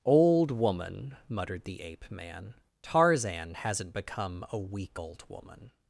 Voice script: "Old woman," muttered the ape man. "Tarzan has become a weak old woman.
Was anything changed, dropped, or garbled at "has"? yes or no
yes